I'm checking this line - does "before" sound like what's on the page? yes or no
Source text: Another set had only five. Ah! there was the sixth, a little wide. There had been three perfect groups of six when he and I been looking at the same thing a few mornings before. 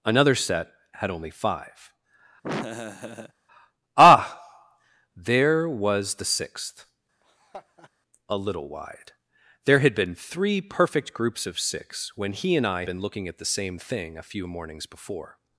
yes